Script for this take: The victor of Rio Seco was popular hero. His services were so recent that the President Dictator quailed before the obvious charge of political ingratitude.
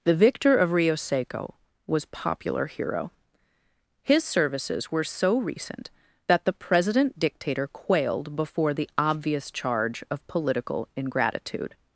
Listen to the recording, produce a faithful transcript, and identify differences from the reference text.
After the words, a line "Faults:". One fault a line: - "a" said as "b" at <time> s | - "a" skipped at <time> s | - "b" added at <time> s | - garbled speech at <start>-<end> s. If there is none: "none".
The victor of Rio Seco was popular hero. His services were so recent that the President Dictator quailed before the obvious charge of political ingratitude.
Faults:
none